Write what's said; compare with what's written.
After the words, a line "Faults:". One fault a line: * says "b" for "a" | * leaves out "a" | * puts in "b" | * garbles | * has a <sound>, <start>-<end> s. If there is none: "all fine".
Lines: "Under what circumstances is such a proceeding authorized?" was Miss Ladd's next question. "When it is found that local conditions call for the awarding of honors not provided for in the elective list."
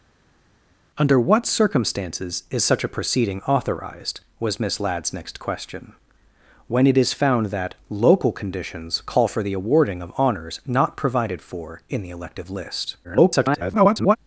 "Under what circumstances is such a proceeding authorized?" was Miss Ladd's next question. "When it is found that local conditions call for the awarding of honors not provided for in the elective list." [garbled]
Faults:
* garbles